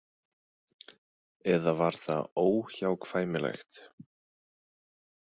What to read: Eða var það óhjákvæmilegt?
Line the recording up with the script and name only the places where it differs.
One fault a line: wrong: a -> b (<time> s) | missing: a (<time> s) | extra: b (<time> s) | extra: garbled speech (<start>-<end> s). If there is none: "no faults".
no faults